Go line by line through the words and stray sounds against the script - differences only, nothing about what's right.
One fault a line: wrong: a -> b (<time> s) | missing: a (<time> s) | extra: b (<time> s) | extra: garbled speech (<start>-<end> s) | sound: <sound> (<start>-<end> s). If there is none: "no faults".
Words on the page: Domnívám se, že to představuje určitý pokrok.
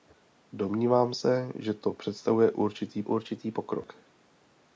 extra: určitý (3.0 s)